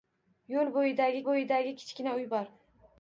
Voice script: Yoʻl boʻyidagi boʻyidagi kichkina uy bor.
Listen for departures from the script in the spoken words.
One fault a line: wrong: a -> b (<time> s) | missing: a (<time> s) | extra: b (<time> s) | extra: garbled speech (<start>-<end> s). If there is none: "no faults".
no faults